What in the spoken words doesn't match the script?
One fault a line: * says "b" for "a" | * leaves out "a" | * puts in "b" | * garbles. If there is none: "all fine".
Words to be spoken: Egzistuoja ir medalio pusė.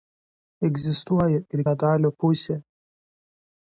all fine